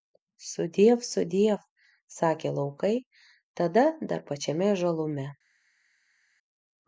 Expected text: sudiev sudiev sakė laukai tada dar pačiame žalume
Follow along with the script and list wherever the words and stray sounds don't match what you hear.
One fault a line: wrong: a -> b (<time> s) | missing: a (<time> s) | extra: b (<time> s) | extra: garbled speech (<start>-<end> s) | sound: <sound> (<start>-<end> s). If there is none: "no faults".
no faults